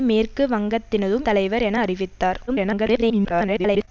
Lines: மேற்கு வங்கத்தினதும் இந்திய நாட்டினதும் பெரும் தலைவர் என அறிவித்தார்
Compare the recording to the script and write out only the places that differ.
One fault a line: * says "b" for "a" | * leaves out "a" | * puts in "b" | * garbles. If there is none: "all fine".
* leaves out "இந்திய நாட்டினதும் பெரும்"
* garbles